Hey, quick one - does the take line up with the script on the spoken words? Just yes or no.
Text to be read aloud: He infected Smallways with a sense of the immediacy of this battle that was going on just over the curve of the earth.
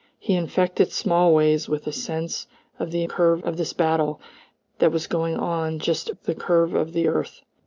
no